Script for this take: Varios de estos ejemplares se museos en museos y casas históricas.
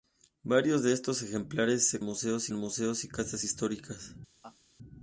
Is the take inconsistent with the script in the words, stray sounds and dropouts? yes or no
yes